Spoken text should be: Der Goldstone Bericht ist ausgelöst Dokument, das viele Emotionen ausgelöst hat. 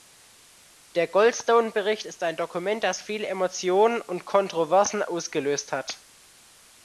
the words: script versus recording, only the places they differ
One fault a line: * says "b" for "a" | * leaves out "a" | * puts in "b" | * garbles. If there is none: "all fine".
* says "ein" for "ausgelöst"
* puts in "und Kontroversen"